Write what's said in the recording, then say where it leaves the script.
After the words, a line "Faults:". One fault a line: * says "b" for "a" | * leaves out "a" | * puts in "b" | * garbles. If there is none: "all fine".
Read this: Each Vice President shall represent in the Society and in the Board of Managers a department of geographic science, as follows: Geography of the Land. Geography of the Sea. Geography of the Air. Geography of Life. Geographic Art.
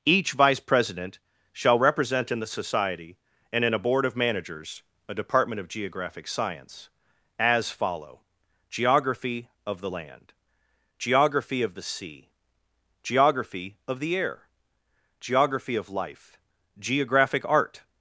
Each Vice President shall represent in the Society and in a Board of Managers a department of geographic science, as follow: Geography of the Land. Geography of the Sea. Geography of the Air. Geography of Life. Geographic Art.
Faults:
* says "a" for "the"
* says "follow" for "follows"